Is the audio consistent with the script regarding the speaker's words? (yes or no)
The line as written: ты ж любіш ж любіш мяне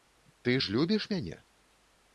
no